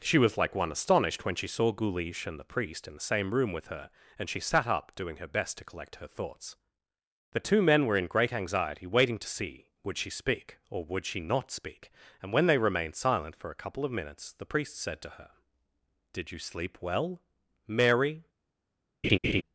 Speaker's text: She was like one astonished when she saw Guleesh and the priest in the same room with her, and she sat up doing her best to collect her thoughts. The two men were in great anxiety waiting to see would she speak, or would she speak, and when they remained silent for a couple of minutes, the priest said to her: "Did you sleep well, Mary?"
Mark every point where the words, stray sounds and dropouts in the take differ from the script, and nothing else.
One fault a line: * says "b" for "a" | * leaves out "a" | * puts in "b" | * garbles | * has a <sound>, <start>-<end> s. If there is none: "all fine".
* puts in "not"
* has a laugh, 19.0-19.4 s